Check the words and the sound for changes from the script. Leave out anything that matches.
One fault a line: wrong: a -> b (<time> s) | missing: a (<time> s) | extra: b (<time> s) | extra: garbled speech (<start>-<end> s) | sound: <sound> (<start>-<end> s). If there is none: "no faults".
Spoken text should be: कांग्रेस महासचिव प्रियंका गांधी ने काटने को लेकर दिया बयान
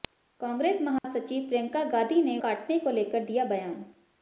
sound: dropout (1.0-1.0 s)